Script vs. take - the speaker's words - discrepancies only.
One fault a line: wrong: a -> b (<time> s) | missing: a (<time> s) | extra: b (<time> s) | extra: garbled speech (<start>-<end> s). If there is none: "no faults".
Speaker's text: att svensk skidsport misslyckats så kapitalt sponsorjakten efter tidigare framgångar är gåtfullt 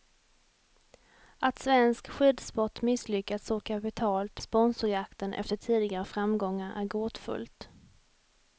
no faults